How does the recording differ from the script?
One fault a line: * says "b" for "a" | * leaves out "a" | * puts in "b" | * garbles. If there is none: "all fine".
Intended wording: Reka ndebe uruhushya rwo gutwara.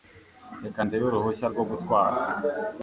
all fine